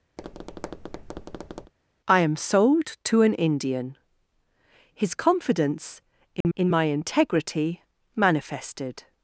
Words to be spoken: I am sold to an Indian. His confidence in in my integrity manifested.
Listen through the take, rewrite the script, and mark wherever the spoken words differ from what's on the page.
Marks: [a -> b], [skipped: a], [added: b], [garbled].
I am sold to an Indian. His confidence in in my integrity manifested.